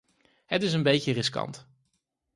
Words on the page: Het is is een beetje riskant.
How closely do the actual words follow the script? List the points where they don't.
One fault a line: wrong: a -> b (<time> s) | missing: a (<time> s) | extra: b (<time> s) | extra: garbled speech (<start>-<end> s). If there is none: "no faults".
missing: is (0.7 s)